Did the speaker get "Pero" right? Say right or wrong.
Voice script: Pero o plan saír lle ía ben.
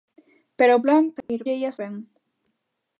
right